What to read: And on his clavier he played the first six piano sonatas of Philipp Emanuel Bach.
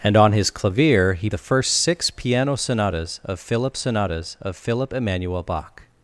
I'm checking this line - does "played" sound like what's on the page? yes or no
no